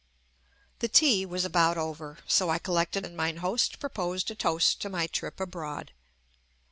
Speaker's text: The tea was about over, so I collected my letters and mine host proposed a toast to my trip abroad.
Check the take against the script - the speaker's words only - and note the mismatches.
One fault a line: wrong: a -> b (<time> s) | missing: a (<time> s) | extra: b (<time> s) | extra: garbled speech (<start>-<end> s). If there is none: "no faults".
missing: my letters (3.0 s)